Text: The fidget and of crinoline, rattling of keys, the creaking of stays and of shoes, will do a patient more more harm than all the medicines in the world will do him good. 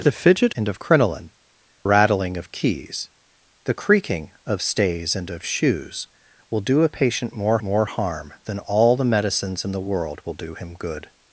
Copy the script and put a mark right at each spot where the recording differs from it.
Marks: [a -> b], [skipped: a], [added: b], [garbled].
The fidget and of crinoline, rattling of keys, the creaking of stays and of shoes, will do a patient more more harm than all the medicines in the world will do him good.